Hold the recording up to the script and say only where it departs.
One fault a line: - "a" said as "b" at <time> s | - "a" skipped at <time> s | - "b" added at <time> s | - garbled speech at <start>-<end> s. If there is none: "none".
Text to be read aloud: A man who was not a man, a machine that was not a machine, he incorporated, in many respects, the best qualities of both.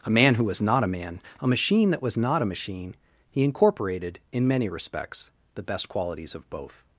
none